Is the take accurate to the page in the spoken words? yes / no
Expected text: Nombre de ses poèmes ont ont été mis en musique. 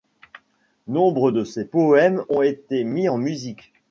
no